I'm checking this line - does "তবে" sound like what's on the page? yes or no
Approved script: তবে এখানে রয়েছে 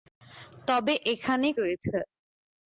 yes